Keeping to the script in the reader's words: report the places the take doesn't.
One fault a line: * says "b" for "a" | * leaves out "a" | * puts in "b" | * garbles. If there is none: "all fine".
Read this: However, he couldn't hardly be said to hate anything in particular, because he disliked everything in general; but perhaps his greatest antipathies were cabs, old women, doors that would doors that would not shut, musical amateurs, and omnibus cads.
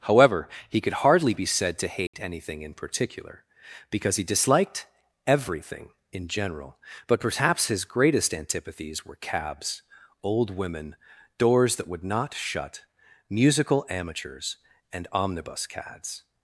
* says "could" for "couldn't"
* leaves out "doors that would"